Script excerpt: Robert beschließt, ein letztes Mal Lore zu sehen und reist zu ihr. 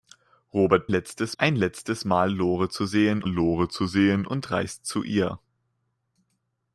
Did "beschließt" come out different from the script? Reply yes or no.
yes